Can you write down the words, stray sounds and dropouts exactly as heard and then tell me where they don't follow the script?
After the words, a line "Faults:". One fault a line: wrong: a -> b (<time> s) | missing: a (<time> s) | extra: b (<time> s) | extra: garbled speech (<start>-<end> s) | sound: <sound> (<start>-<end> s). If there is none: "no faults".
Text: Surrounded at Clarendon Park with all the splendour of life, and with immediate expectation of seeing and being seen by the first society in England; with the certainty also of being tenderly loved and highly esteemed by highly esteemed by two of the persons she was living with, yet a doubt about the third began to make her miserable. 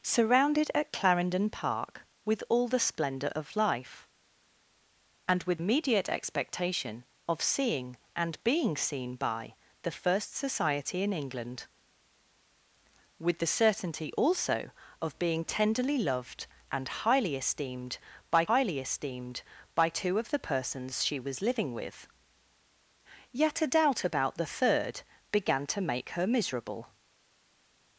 Surrounded at Clarendon Park with all the splendour of life, and with immediate expectation of seeing and being seen by the first society in England; with the certainty also of being tenderly loved and highly esteemed by highly esteemed by two of the persons she was living with, yet a doubt about the third began to make her miserable.
Faults:
no faults